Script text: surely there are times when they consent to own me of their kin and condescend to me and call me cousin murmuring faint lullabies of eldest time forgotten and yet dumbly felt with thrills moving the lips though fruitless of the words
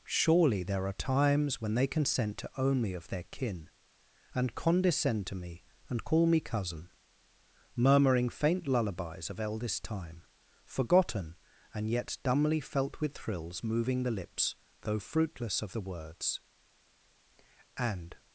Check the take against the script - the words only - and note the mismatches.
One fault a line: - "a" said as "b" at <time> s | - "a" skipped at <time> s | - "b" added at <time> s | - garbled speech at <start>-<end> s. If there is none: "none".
- "and" added at 17.8 s